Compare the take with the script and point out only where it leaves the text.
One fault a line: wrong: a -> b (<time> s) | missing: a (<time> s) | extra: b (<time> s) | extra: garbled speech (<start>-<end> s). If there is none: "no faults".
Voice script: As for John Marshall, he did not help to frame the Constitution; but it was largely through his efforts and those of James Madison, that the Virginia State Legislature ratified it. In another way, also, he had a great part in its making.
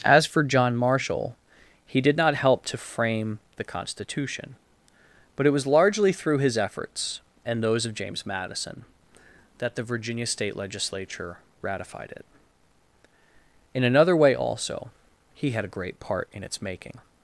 no faults